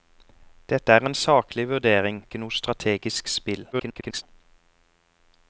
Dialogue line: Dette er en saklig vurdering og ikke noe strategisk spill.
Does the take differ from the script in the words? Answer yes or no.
yes